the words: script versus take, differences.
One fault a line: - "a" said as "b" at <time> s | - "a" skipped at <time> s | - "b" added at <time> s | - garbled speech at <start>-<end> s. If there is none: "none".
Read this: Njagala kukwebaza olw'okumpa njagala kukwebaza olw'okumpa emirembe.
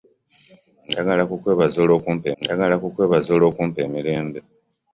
none